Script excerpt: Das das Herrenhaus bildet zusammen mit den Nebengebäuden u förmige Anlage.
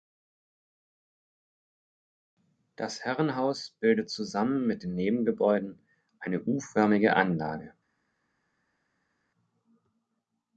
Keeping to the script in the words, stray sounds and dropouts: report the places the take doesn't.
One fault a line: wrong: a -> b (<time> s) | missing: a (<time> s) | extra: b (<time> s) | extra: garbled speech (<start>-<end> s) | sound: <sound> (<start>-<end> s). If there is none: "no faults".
missing: das (3.0 s)
extra: eine (6.2 s)